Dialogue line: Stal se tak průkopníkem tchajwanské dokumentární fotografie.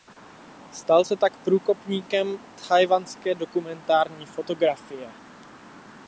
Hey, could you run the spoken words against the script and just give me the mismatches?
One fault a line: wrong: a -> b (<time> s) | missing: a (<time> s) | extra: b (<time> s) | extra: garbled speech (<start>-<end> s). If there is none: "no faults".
no faults